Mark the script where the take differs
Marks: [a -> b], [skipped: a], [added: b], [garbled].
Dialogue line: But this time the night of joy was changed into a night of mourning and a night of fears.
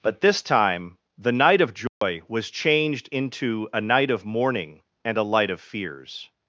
But this time the night of joy was changed into a night of mourning and a [night -> light] of fears.